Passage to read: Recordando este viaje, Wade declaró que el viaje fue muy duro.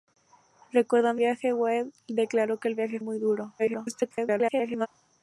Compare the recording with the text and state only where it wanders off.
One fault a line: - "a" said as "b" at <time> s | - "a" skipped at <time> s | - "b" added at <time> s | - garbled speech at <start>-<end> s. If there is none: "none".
- "este" skipped at 1.2 s
- "fue" skipped at 3.0 s
- garbled speech at 3.6-4.9 s